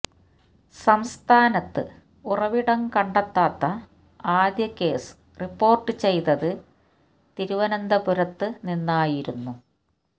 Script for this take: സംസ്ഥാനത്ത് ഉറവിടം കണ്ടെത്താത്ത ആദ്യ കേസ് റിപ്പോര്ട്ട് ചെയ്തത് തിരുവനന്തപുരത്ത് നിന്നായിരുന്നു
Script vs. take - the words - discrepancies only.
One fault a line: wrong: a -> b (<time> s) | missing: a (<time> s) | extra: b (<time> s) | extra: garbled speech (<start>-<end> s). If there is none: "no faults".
no faults